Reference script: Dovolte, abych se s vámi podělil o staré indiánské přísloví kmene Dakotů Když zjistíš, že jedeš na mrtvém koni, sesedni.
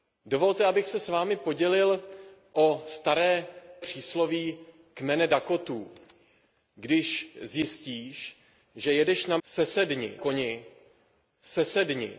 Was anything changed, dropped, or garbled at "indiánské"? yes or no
yes